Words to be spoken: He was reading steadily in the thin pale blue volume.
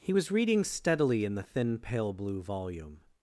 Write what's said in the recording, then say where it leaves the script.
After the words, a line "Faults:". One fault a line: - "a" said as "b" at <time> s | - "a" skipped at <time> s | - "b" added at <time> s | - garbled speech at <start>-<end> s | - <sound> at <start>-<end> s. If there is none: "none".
He was reading steadily in the thin pale blue volume.
Faults:
none